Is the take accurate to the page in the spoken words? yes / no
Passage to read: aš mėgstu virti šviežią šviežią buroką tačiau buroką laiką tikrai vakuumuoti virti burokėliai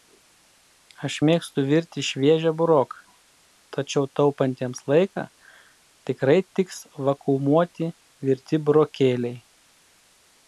no